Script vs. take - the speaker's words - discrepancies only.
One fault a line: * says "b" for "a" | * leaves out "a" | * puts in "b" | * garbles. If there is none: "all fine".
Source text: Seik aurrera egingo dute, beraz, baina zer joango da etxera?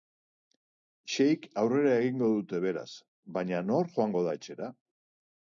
* says "nor" for "zer"